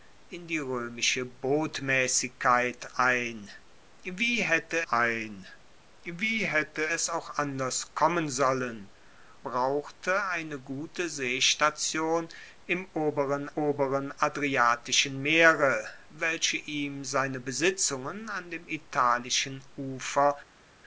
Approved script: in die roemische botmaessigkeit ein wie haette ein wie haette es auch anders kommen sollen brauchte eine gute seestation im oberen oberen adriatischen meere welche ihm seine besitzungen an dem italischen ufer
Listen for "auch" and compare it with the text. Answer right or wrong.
right